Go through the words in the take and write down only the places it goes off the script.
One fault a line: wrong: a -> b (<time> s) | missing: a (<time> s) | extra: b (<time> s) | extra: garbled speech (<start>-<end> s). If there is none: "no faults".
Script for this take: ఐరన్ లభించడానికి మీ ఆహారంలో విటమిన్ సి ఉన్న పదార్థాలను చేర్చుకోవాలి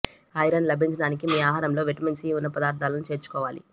no faults